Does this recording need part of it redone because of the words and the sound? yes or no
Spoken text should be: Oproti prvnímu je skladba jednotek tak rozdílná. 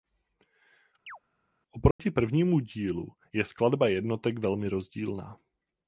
yes